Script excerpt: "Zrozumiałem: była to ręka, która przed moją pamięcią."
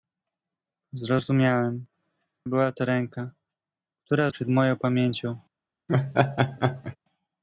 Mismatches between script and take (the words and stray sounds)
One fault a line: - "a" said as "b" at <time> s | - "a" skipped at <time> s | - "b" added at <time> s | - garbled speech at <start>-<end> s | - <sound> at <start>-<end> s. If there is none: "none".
- laugh at 5.9-7.0 s